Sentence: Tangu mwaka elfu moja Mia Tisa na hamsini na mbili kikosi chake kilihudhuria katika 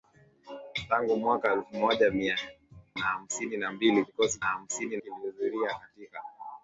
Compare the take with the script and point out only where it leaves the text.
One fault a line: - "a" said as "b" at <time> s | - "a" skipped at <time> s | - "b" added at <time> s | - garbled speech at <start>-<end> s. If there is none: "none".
- "Tisa" skipped at 2.4 s
- "chake" said as "hamsini" at 4.4 s